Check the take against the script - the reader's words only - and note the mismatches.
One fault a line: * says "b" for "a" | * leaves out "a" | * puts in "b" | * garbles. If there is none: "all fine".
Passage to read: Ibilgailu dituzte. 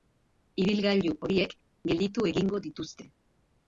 * puts in "horiek gelditu egingo"